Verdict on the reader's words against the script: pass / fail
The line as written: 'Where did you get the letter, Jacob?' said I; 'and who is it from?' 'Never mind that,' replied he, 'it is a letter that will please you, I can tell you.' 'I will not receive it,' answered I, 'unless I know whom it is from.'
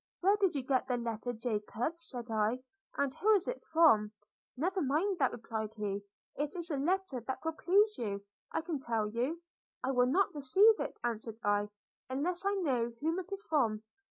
pass